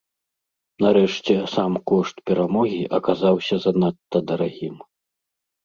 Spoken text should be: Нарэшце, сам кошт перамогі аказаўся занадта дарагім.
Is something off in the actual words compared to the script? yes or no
no